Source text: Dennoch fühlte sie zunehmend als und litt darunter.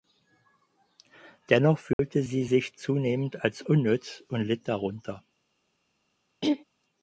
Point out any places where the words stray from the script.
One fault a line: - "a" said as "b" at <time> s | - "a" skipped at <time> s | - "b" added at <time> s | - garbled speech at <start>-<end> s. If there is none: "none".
- "sich" added at 2.4 s
- "unnütz" added at 3.6 s